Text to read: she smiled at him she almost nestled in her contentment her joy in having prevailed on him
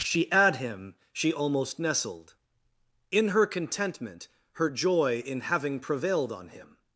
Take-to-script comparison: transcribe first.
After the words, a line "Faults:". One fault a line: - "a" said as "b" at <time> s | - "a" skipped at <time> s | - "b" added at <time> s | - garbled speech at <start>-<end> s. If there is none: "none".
she at him she almost nestled in her contentment her joy in having prevailed on him
Faults:
- "smiled" skipped at 0.3 s